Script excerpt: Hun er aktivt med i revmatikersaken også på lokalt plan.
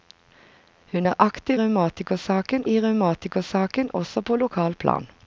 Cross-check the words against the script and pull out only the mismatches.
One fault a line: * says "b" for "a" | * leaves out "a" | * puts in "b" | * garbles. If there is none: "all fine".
* says "revmatikersaken" for "med"